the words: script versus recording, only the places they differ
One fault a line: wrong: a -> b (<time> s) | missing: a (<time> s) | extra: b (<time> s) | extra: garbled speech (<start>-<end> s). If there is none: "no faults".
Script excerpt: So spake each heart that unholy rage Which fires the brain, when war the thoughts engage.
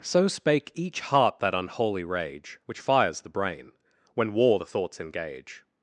no faults